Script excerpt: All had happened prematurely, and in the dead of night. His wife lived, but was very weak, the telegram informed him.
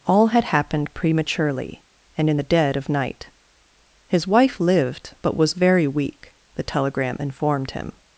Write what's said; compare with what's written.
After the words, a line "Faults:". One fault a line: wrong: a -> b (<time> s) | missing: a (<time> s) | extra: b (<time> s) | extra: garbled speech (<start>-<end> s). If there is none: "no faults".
All had happened prematurely, and in the dead of night. His wife lived, but was very weak, the telegram informed him.
Faults:
no faults